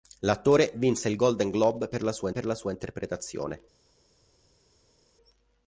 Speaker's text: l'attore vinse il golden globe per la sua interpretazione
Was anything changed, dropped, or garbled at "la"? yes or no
no